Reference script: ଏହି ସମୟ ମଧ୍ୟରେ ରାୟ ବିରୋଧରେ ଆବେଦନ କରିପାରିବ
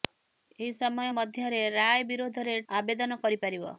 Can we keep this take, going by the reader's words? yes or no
yes